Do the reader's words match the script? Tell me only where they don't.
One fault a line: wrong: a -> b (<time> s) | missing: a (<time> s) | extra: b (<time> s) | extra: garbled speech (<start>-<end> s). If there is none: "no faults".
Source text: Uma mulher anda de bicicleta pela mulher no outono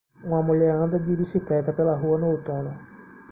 wrong: mulher -> rua (2.0 s)